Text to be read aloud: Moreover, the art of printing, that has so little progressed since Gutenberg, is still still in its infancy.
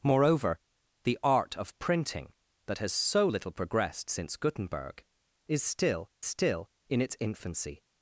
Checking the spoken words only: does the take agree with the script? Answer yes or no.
yes